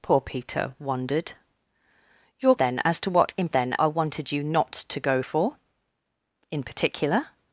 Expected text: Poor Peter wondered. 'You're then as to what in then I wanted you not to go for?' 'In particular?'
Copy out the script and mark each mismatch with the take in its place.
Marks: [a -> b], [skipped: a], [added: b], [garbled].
Poor Peter wondered. 'You're then as to what in then I wanted you not to go for?' 'In particular?'